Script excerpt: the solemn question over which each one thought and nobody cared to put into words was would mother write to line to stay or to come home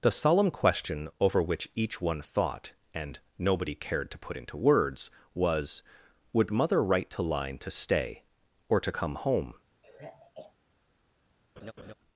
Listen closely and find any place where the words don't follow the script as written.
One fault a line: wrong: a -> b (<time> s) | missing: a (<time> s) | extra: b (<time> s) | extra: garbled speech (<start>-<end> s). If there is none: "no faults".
no faults